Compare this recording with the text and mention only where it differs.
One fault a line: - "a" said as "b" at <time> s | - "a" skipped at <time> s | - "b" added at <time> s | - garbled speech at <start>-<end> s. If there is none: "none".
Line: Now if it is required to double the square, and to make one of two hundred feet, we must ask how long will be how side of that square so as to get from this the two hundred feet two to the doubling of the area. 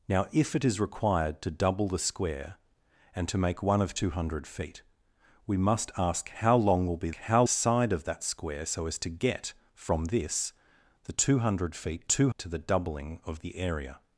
none